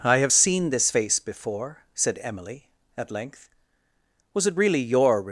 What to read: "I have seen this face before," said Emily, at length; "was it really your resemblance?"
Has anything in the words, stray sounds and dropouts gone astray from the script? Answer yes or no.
yes